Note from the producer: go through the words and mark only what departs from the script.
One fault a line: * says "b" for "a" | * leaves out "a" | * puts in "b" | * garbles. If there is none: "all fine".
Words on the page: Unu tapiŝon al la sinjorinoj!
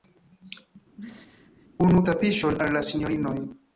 all fine